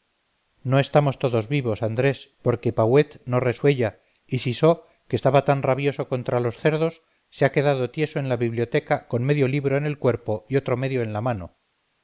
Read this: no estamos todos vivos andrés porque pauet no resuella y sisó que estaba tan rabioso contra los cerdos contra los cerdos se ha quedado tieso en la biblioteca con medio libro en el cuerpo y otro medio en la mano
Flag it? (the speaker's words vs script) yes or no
yes